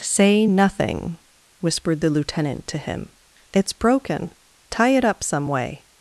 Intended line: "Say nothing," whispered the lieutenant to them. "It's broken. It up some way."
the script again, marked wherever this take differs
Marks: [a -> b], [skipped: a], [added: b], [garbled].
"Say nothing," whispered the lieutenant to [them. -> him] "It's broken. [added: Tie] It up some way."